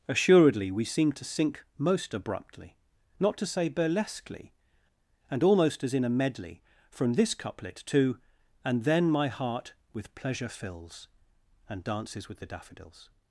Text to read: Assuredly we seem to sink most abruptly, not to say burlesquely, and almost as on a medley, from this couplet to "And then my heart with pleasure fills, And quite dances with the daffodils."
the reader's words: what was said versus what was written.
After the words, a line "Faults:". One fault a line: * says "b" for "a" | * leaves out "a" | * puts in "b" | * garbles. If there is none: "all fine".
Assuredly we seem to sink most abruptly, not to say burlesquely, and almost as in a medley, from this couplet to "And then my heart with pleasure fills, And dances with the daffodils."
Faults:
* says "in" for "on"
* leaves out "quite"